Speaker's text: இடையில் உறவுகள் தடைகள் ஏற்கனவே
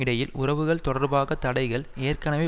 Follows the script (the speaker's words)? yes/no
no